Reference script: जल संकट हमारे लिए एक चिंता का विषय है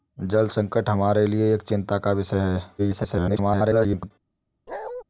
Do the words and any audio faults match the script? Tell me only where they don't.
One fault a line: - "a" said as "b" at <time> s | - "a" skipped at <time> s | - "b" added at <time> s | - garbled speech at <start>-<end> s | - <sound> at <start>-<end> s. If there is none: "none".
- garbled speech at 2.8-4.1 s
- bark at 4.7-5.0 s